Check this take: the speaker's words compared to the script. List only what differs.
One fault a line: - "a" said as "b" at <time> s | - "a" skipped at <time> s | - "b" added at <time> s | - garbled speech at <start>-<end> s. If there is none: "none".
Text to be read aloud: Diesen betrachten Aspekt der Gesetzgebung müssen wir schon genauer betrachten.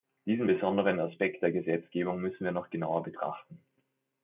- "betrachten" said as "besonderen" at 0.4 s
- "schon" said as "noch" at 2.5 s